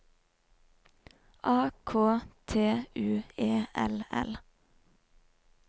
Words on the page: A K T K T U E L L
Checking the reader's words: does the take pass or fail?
fail